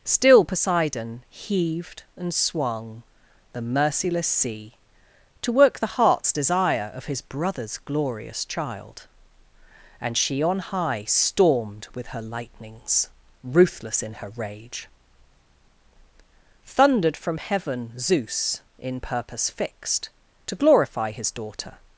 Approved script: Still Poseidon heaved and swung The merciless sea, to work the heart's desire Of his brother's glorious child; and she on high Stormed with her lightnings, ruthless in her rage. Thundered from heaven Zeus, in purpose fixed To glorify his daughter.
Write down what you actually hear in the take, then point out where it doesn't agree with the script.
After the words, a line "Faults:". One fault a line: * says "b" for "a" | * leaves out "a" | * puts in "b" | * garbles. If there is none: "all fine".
Still Poseidon heaved and swung The merciless sea, to work the heart's desire Of his brother's glorious child; and she on high Stormed with her lightnings, ruthless in her rage. Thundered from heaven Zeus, in purpose fixed To glorify his daughter.
Faults:
all fine